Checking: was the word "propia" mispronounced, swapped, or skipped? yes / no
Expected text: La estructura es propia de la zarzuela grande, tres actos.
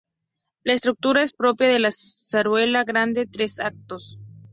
no